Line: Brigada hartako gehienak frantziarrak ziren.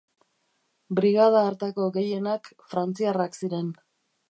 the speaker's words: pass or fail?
pass